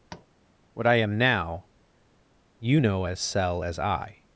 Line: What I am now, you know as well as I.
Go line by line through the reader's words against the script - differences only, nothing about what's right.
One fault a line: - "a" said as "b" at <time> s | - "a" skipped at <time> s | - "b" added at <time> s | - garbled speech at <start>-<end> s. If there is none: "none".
- "well" said as "cell" at 3.2 s